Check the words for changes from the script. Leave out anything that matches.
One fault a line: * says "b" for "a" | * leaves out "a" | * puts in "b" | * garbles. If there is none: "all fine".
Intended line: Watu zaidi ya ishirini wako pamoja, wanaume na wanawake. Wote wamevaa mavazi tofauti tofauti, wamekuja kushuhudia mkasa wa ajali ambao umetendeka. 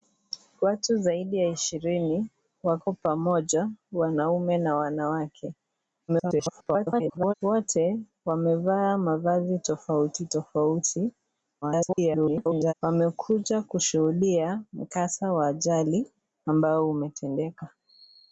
* garbles
* garbles